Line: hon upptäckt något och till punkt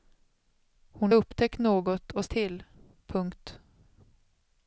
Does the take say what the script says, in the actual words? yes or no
yes